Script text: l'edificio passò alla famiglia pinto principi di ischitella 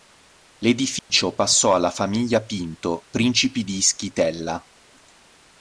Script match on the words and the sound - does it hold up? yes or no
no